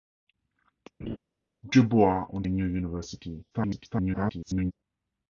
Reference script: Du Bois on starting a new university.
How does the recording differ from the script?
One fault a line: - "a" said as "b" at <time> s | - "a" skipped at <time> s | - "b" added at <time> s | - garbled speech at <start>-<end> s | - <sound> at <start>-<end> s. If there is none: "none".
- laugh at 1.0-1.2 s
- "starting" skipped at 2.4 s
- garbled speech at 3.5-4.7 s